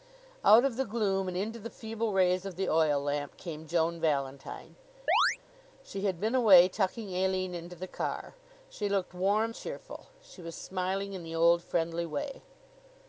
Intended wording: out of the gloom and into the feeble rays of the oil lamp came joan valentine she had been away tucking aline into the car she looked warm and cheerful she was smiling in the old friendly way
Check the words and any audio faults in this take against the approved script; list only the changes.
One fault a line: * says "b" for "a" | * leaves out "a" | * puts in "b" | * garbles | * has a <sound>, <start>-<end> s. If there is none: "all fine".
* has a chirp, 5.1-5.4 s
* leaves out "and"